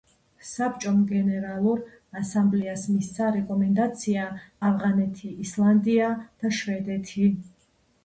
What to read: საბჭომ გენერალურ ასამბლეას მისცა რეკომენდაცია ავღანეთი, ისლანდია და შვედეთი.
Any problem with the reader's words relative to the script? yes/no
no